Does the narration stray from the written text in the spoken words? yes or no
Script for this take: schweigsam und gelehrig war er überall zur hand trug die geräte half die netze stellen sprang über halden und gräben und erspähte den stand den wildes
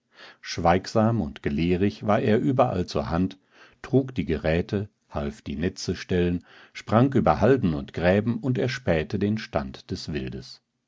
yes